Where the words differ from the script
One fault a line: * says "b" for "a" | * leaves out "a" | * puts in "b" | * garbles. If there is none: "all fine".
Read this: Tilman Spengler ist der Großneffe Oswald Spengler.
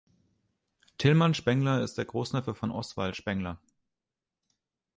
* puts in "von"